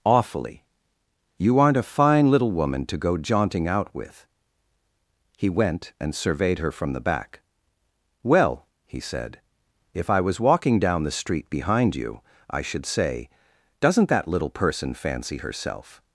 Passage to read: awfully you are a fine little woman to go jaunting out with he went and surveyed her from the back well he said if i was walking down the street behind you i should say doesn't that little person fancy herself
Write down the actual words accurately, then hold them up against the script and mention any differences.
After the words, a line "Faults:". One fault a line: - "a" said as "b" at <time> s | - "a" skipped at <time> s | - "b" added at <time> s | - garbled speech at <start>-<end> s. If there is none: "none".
awfully you aren't a fine little woman to go jaunting out with he went and surveyed her from the back well he said if i was walking down the street behind you i should say doesn't that little person fancy herself
Faults:
- "are" said as "aren't" at 1.6 s